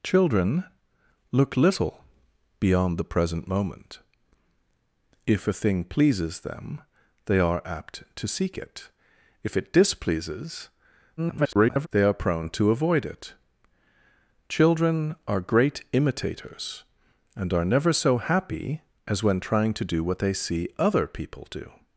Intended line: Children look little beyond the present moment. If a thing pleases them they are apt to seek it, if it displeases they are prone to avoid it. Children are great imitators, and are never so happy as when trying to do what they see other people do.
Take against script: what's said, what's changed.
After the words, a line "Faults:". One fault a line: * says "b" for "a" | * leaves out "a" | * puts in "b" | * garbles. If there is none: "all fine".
Children look little beyond the present moment. If a thing pleases them they are apt to seek it, if it displeases [garbled] they are prone to avoid it. Children are great imitators, and are never so happy as when trying to do what they see other people do.
Faults:
* garbles